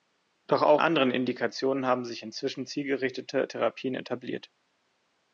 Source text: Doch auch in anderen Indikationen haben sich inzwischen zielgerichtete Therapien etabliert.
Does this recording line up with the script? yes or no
no